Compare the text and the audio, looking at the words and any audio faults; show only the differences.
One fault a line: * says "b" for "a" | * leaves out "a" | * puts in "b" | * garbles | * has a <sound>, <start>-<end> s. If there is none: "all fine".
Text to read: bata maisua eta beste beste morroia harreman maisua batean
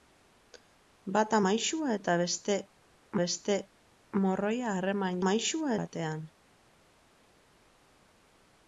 all fine